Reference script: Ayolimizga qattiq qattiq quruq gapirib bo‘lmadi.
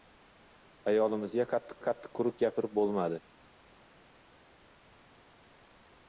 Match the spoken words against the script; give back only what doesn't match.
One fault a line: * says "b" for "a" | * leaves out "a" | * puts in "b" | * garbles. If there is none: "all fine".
all fine